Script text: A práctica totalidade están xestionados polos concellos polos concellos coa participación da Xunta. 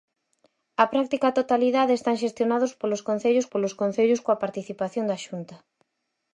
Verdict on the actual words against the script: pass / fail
pass